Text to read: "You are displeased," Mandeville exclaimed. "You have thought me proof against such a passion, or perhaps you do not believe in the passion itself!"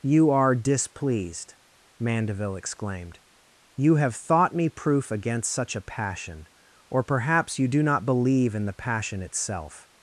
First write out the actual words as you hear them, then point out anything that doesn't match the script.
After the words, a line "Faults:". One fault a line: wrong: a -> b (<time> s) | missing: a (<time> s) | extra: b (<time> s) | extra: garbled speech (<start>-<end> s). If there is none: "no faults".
"You are displeased," Mandeville exclaimed. "You have thought me proof against such a passion, or perhaps you do not believe in the passion itself!"
Faults:
no faults